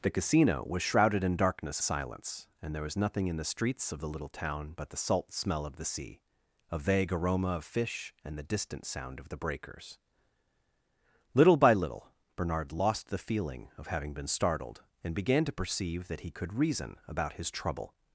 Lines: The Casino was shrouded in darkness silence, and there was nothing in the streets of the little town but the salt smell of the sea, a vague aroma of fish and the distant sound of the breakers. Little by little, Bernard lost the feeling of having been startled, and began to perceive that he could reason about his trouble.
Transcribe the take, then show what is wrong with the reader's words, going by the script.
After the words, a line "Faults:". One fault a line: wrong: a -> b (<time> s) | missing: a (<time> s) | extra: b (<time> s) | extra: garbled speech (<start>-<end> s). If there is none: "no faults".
The Casino was shrouded in darkness silence, and there was nothing in the streets of the little town but the salt smell of the sea, a vague aroma of fish and the distant sound of the breakers. Little by little, Bernard lost the feeling of having been startled, and began to perceive that he could reason about his trouble.
Faults:
no faults